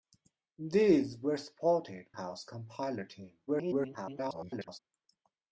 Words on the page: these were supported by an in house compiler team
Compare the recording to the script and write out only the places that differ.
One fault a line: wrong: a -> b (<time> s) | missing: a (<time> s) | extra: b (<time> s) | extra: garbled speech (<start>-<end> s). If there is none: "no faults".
missing: by an in (2.1 s)
extra: garbled speech (3.5-4.8 s)